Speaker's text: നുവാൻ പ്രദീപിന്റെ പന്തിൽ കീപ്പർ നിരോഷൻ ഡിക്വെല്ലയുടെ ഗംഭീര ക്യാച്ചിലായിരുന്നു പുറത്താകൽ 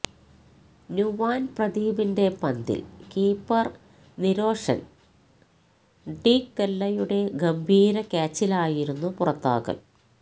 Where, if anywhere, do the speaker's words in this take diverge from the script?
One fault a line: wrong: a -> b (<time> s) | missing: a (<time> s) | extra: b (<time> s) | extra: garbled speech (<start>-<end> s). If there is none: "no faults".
no faults